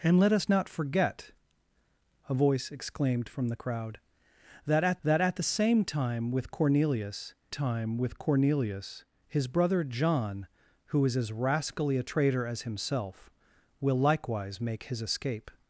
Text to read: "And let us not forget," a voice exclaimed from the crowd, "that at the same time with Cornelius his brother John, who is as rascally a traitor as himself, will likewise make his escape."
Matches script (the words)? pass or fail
fail